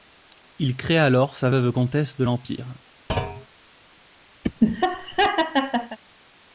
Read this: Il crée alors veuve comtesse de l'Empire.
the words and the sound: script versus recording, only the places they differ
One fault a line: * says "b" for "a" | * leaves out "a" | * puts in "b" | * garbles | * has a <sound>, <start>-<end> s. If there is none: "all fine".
* puts in "sa"
* has a thud, 3.1-3.5 s
* has a laugh, 4.4-6.0 s